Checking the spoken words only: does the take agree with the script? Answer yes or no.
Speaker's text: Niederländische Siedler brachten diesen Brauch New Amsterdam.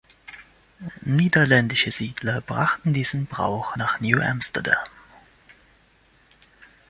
no